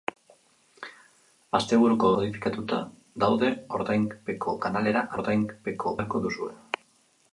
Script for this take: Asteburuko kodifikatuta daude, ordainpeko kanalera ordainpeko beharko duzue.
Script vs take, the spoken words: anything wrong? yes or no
no